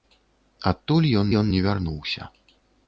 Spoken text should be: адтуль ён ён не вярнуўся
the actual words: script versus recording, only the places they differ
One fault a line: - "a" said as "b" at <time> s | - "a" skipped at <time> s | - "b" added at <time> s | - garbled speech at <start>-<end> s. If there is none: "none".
none